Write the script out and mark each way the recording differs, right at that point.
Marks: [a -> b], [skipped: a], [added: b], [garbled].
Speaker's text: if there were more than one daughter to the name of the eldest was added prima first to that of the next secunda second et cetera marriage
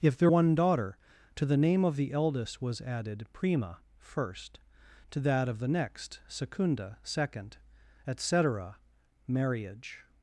if there [skipped: were more than] one daughter to the name of the eldest was added prima first to that of the next secunda second et cetera marriage